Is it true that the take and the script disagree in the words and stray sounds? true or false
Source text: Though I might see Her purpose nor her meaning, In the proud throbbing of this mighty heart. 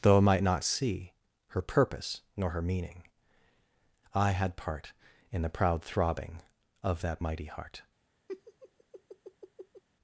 true